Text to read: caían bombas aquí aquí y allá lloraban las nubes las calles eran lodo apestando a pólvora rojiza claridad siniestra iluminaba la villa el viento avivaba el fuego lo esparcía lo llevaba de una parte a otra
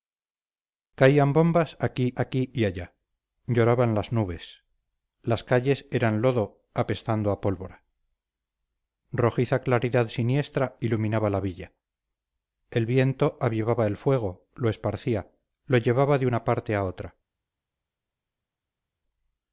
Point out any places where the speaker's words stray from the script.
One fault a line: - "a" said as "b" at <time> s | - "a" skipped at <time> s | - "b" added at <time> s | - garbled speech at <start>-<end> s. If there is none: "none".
none